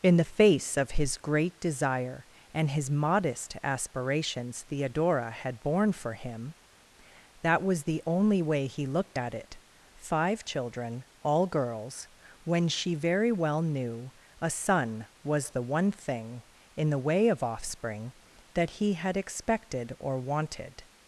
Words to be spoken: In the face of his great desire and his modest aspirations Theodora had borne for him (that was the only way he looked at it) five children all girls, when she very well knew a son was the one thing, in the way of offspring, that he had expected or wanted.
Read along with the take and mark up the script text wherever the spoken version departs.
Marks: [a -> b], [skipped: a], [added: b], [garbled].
In the face of his great desire and his modest aspirations Theodora had borne for him (that was the only way he looked at it) five children all girls, when she very well knew a son was the one thing, in the way of offspring, that he had expected or wanted.